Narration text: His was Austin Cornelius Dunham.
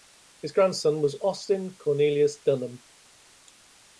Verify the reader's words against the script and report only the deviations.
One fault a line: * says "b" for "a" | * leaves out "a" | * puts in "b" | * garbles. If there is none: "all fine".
* puts in "grandson"